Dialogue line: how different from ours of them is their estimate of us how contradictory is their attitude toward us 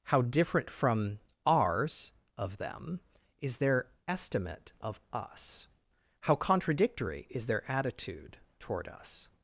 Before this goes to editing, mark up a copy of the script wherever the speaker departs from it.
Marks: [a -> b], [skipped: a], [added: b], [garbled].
how different from ours of them is their estimate of us how contradictory is their attitude toward us